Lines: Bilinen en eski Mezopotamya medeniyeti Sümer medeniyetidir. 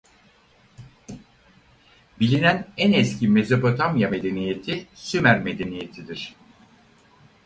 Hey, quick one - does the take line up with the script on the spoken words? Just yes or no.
yes